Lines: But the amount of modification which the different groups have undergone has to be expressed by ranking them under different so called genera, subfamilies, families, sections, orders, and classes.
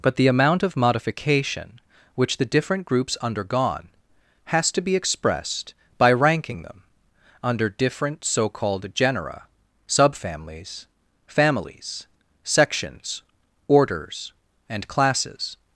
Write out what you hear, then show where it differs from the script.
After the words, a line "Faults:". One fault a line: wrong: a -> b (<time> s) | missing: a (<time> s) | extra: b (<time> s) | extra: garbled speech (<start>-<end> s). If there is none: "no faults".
But the amount of modification which the different groups undergone has to be expressed by ranking them under different so called genera, subfamilies, families, sections, orders, and classes.
Faults:
missing: have (3.2 s)